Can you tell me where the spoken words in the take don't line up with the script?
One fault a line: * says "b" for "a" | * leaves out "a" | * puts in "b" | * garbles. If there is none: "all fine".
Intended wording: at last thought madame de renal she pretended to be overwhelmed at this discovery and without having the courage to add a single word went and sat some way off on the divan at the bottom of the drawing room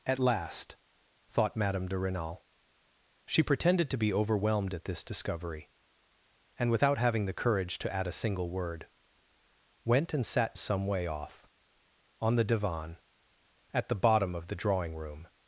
all fine